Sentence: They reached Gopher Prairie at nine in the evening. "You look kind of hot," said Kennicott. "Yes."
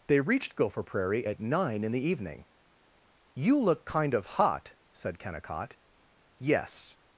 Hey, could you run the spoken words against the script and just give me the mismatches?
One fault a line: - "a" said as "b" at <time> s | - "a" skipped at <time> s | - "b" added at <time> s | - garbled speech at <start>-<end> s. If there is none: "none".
none